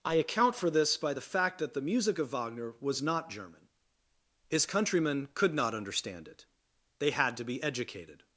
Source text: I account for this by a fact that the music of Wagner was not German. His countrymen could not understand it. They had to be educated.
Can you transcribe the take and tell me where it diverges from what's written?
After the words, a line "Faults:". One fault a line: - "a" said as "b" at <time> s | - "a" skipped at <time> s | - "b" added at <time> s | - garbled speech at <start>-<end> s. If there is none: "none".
I account for this by the fact that the music of Wagner was not German. His countrymen could not understand it. They had to be educated.
Faults:
- "a" said as "the" at 1.1 s